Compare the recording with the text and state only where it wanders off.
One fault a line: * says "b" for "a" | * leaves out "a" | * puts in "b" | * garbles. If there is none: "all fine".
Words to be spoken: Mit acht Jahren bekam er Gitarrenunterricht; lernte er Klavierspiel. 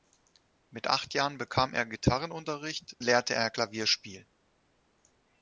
all fine